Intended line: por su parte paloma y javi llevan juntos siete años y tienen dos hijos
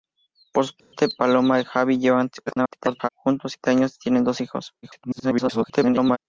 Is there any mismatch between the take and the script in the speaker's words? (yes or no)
yes